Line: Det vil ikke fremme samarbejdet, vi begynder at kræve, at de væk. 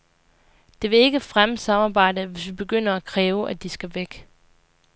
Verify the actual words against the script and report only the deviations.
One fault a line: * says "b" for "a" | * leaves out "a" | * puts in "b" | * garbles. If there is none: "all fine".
* puts in "hvis"
* puts in "skal"